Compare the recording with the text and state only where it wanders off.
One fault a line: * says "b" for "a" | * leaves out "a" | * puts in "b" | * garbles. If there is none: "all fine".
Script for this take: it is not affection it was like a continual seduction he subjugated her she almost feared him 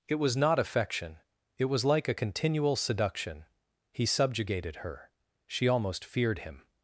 * says "was" for "is"